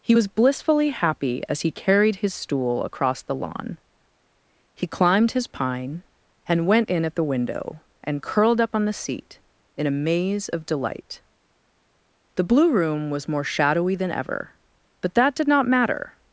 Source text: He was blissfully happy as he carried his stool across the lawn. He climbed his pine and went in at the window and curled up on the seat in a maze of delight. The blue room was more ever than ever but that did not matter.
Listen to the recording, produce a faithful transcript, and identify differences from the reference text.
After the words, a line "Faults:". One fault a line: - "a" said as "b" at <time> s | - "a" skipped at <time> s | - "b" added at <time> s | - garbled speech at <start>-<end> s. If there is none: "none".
He was blissfully happy as he carried his stool across the lawn. He climbed his pine and went in at the window and curled up on the seat in a maze of delight. The blue room was more shadowy than ever but that did not matter.
Faults:
- "ever" said as "shadowy" at 13.4 s